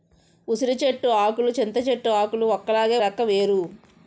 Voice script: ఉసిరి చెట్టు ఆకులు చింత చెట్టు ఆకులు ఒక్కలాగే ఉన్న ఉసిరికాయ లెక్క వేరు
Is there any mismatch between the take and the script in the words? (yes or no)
yes